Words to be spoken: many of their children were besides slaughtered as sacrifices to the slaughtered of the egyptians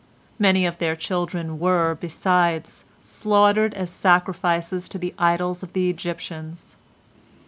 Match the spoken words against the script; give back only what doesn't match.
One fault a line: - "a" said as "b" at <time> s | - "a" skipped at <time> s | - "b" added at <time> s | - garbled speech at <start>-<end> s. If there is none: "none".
- "slaughtered" said as "idols" at 5.2 s